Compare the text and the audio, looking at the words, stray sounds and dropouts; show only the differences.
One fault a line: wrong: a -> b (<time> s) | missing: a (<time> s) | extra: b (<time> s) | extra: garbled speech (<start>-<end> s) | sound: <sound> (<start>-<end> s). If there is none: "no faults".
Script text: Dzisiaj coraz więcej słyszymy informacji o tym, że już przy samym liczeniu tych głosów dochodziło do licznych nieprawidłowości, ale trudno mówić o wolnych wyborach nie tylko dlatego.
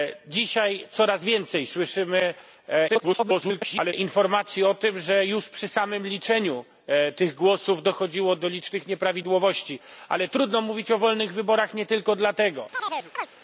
extra: garbled speech (2.9-3.9 s)
sound: chirp (12.7-13.3 s)